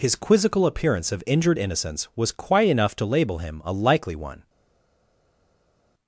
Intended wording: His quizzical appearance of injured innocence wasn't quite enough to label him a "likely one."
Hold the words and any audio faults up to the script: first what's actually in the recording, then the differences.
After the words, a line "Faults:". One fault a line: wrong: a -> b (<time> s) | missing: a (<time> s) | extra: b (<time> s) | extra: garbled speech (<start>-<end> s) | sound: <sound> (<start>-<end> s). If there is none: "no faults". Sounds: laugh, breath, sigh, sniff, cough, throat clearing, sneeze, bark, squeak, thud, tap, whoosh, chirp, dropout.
His quizzical appearance of injured innocence was quite enough to label him a "likely one."
Faults:
wrong: wasn't -> was (2.2 s)